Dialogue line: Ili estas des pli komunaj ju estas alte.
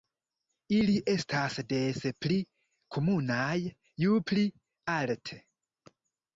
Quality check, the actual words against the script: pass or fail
fail